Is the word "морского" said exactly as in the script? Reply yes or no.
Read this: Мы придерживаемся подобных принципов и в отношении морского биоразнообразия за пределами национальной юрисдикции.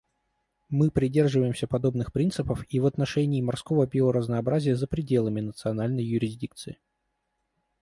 yes